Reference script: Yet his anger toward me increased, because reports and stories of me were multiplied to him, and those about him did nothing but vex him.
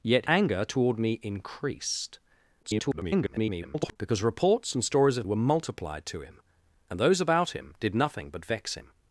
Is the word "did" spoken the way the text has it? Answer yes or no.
yes